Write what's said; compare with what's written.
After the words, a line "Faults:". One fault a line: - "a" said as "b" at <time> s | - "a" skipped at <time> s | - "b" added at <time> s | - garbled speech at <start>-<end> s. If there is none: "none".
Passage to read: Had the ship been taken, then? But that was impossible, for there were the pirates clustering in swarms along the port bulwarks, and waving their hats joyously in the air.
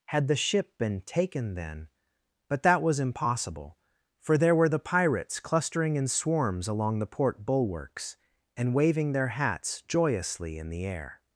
Had the ship been taken, then? But that was impossible, for there were the pirates clustering in swarms along the port bulwarks, and waving their hats joyously in the air.
Faults:
none